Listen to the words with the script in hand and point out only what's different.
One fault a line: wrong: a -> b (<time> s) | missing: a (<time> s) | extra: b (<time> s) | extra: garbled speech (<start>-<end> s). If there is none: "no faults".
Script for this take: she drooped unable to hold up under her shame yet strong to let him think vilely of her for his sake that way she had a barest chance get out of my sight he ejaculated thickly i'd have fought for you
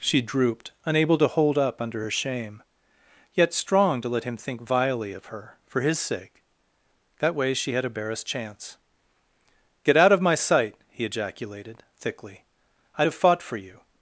no faults